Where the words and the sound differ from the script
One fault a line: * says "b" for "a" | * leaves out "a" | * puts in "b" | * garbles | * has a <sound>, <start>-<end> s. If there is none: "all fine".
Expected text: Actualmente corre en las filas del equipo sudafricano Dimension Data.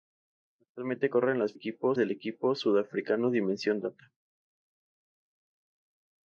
* says "equipo" for "filas"